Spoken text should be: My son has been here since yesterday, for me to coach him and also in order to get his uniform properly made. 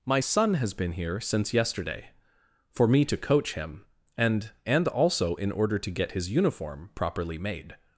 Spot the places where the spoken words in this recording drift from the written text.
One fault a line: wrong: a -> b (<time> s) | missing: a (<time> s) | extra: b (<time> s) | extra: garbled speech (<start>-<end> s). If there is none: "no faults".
extra: and (4.6 s)